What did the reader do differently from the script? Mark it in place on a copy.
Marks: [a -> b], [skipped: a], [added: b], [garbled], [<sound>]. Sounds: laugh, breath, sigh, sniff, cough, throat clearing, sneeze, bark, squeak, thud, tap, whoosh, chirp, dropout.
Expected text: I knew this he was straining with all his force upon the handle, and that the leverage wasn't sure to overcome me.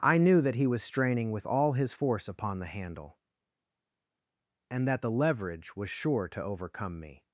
I knew [this -> that] he was straining with all his force upon the handle, and that the leverage [wasn't -> was] sure to overcome me.